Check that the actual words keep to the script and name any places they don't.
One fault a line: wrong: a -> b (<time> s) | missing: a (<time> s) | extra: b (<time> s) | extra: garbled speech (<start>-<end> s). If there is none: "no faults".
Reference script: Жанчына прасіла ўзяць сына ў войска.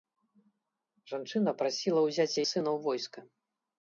no faults